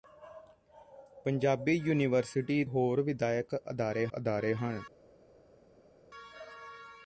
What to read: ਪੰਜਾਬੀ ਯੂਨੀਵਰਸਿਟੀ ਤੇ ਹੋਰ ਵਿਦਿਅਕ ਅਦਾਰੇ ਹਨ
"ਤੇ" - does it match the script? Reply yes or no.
no